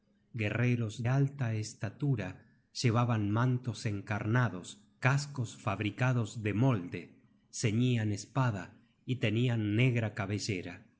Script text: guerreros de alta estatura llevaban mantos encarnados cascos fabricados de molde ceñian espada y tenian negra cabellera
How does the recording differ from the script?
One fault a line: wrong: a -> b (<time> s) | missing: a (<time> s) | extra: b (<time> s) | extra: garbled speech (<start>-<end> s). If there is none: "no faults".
missing: de (1.1 s)